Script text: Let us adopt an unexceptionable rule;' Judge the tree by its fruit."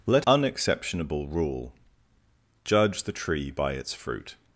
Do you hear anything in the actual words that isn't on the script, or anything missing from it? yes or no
yes